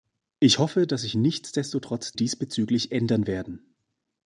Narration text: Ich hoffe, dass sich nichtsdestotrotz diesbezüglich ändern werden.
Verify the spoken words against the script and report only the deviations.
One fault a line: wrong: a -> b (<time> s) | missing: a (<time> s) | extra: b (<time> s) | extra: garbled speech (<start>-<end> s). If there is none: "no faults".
no faults